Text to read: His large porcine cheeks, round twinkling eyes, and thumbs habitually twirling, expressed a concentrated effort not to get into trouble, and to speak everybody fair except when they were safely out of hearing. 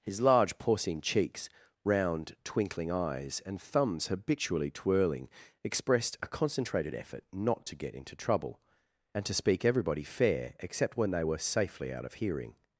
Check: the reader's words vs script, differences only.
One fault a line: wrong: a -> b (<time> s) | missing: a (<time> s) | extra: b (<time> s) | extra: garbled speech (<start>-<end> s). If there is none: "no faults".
no faults